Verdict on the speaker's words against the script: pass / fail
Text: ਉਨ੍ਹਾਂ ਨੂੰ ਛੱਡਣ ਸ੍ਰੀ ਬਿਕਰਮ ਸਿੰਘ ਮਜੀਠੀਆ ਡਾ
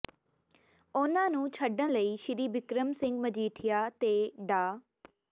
fail